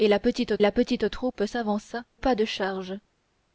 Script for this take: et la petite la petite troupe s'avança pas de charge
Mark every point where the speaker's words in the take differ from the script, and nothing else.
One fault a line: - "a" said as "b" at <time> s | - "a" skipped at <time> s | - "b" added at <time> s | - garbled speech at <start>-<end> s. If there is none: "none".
none